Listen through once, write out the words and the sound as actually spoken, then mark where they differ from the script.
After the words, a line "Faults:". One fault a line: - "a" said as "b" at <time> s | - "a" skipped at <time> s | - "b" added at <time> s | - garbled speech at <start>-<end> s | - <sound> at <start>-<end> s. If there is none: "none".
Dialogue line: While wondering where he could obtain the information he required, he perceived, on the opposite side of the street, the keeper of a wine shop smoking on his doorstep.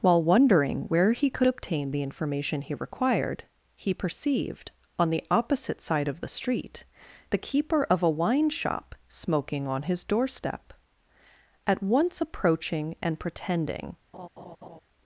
While wondering where he could obtain the information he required, he perceived, on the opposite side of the street, the keeper of a wine shop smoking on his doorstep. At once approaching and pretending
Faults:
- "At once approaching and pretending" added at 11.6 s
- laugh at 14.1-14.8 s